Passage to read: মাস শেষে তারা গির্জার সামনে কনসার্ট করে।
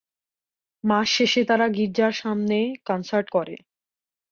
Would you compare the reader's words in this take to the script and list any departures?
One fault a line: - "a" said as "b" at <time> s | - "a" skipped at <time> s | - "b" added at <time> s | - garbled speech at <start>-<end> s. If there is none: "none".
none